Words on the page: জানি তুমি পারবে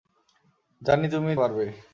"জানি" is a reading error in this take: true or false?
false